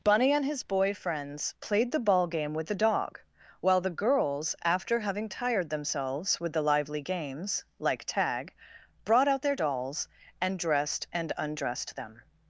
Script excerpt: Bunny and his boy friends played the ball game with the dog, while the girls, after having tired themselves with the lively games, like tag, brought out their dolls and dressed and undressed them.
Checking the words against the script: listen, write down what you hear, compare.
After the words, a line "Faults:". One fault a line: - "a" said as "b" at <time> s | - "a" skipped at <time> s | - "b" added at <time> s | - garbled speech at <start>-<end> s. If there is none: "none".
Bunny and his boy friends played the ball game with the dog, while the girls, after having tired themselves with the lively games, like tag, brought out their dolls and dressed and undressed them.
Faults:
none